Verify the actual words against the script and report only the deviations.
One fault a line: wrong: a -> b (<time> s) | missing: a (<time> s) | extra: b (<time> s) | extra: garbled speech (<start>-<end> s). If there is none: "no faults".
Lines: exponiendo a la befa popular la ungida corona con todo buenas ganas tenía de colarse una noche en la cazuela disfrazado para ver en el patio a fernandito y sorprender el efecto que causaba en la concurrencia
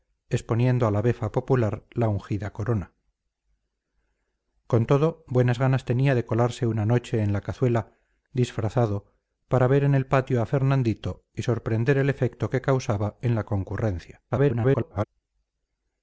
extra: garbled speech (14.3-15.0 s)